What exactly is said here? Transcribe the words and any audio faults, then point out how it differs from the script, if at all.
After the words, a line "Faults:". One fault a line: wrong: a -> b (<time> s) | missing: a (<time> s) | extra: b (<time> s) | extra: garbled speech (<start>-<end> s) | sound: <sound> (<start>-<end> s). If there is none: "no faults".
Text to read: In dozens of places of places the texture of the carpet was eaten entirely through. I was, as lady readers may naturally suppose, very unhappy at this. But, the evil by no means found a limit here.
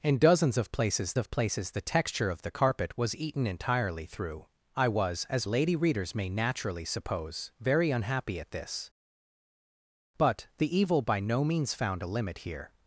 In dozens of places of places the texture of the carpet was eaten entirely through. I was, as lady readers may naturally suppose, very unhappy at this. But, the evil by no means found a limit here.
Faults:
no faults